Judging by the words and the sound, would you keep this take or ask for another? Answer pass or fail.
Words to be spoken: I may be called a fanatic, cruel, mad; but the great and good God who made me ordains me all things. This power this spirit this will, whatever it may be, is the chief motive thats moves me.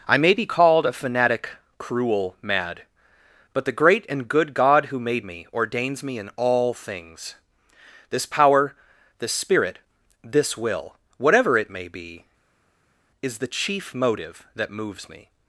fail